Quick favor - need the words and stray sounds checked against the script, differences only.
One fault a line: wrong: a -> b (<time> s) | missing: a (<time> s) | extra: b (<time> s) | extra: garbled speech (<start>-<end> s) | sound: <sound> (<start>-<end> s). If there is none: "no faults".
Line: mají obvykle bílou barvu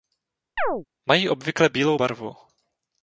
sound: chirp (0.6-0.9 s)